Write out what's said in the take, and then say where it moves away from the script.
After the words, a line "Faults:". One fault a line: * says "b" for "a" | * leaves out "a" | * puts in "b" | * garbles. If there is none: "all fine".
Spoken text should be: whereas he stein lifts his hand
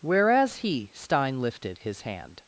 whereas he stein lifted his hand
Faults:
* says "lifted" for "lifts"